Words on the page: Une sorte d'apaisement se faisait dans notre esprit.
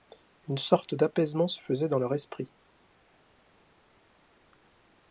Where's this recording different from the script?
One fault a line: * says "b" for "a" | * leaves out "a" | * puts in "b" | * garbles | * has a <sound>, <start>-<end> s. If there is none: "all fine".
* says "leur" for "notre"